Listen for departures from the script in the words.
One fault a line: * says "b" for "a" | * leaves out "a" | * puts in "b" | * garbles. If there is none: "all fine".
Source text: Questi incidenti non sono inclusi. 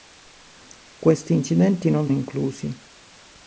* leaves out "sono"